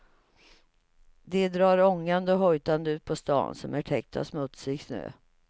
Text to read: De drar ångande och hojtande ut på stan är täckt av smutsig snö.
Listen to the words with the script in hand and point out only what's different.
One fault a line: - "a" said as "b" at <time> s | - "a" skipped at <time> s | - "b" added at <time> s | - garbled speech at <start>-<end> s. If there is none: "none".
- "som" added at 3.5 s